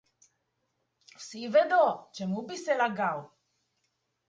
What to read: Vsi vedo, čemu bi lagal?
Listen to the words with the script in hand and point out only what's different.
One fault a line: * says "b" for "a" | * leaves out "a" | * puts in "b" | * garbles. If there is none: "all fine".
* puts in "se"